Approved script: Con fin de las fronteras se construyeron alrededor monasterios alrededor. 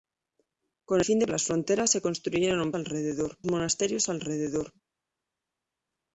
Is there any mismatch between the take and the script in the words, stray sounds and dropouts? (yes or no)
no